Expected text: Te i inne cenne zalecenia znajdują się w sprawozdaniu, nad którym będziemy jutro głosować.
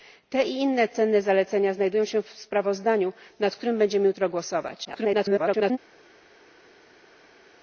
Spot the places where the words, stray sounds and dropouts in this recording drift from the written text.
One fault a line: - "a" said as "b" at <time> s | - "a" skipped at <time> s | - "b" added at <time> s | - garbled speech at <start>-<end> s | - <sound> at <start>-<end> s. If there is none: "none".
- garbled speech at 4.8-5.8 s